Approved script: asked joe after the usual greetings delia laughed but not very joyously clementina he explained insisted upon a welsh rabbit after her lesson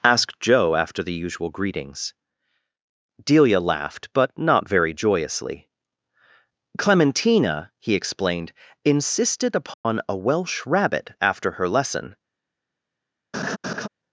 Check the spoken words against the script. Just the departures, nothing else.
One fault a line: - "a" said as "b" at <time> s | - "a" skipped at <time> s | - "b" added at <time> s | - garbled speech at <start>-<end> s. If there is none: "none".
none